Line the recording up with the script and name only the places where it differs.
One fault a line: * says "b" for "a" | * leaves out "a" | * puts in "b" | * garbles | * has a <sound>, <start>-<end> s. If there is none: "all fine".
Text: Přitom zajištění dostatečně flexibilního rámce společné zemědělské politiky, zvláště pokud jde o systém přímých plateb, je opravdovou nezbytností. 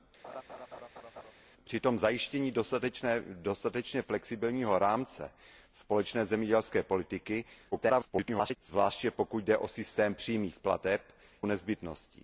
* has a laugh, 0.2-1.3 s
* garbles
* leaves out "je opravdovou"